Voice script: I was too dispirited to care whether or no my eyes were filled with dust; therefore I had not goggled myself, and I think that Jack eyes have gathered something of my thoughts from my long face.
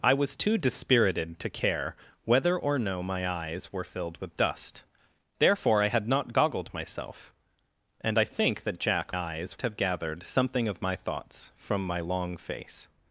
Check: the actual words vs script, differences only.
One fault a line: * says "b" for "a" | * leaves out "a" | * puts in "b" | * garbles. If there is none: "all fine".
all fine